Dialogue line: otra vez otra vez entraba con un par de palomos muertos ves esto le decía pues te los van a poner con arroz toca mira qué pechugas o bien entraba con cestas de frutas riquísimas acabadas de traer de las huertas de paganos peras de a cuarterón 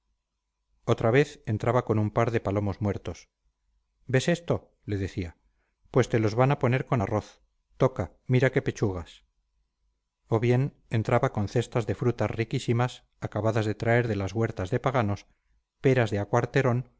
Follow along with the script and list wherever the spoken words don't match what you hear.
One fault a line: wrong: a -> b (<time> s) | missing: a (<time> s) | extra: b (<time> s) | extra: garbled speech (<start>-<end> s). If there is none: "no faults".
missing: otra vez (1.4 s)